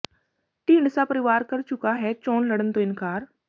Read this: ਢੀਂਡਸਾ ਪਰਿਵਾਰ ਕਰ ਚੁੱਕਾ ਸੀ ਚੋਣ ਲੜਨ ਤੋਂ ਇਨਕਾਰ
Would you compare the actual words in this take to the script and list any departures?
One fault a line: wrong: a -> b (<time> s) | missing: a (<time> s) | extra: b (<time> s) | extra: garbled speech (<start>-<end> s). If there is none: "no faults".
wrong: ਸੀ -> ਹੈ (1.9 s)